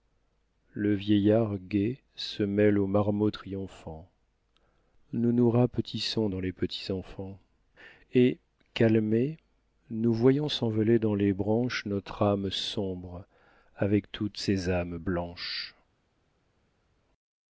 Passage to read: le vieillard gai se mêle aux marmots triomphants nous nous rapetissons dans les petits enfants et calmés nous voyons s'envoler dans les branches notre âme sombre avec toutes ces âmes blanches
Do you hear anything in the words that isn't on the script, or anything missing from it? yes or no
no